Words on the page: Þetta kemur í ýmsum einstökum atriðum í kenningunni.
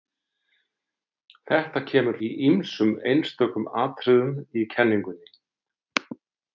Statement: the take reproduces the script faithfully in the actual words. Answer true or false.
true